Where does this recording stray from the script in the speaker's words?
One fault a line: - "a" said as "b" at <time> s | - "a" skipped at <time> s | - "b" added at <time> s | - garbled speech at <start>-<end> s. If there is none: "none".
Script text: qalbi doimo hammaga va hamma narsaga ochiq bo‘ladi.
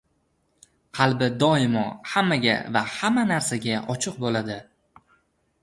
none